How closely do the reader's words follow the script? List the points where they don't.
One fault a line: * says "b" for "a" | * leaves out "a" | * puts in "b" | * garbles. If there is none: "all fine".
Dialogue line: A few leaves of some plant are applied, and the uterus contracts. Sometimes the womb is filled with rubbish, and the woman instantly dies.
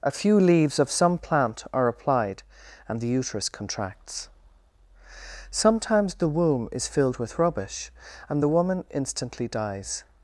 all fine